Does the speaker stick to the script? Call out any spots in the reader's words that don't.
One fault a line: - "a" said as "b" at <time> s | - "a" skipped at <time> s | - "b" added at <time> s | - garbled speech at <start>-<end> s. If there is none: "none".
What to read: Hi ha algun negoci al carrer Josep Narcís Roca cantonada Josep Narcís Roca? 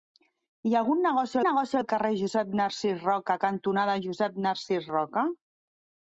- "negoci" added at 1.5 s